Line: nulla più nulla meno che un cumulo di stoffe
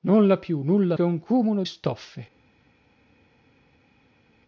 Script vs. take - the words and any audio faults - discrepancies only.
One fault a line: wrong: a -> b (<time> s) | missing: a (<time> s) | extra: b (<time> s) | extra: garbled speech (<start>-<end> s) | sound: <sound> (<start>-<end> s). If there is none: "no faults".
missing: meno (1.0 s)
missing: di (1.6 s)